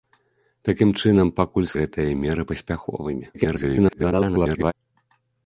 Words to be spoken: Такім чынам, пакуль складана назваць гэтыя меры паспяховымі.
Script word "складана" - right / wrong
wrong